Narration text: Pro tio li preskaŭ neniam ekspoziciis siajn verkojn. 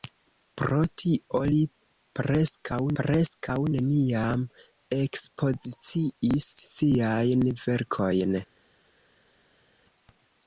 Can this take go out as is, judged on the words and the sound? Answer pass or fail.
fail